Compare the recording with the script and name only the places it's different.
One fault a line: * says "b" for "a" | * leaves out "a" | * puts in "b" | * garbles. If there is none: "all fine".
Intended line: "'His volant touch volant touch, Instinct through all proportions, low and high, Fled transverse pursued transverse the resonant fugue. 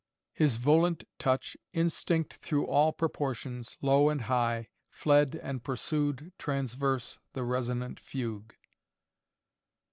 * leaves out "volant touch"
* says "and" for "transverse"